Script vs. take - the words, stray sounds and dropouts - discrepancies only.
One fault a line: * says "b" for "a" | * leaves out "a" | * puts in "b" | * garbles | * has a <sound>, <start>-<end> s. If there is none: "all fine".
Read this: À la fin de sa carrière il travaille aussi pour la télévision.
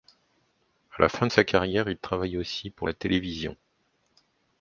all fine